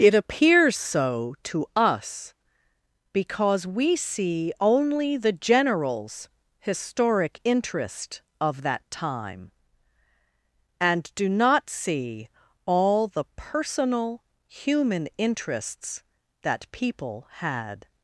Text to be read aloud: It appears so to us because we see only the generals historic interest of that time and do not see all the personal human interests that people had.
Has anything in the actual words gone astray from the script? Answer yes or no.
no